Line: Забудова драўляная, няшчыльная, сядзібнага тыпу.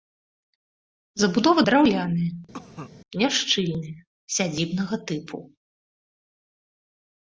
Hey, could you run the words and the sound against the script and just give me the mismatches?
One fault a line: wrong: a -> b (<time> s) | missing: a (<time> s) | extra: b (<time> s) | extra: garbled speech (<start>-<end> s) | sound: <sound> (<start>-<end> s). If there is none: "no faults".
sound: cough (2.5-2.9 s)